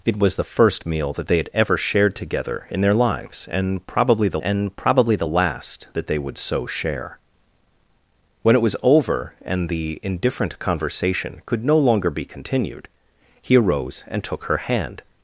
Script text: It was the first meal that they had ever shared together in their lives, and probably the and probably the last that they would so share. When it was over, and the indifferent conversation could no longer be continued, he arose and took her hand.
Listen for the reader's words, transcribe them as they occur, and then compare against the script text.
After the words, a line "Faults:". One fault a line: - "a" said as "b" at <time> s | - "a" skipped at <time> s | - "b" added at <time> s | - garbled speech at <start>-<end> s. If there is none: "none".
It was the first meal that they had ever shared together in their lives, and probably the and probably the last that they would so share. When it was over, and the indifferent conversation could no longer be continued, he arose and took her hand.
Faults:
none